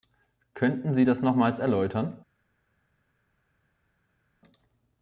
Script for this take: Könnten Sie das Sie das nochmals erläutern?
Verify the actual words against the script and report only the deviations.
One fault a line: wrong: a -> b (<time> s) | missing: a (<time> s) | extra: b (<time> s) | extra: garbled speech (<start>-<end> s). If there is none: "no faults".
missing: Sie das (1.2 s)